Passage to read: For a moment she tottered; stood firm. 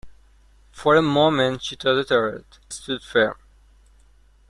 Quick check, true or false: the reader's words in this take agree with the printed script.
true